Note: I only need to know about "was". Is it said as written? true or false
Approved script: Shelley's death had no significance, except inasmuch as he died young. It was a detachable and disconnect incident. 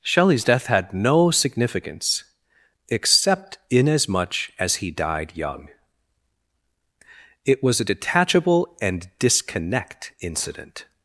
true